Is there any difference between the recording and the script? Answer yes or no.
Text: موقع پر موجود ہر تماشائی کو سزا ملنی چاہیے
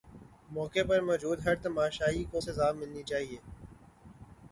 no